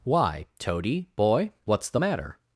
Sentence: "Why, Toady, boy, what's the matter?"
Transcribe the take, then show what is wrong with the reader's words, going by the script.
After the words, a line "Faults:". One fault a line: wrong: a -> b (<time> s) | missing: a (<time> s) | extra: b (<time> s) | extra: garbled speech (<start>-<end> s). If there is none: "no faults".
"Why, Toady, boy, what's the matter?"
Faults:
no faults